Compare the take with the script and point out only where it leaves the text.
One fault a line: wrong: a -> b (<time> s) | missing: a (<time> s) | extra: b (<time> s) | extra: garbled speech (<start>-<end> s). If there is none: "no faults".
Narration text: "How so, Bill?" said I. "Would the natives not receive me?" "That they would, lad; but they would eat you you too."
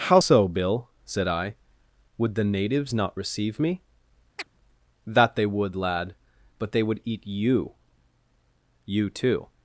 no faults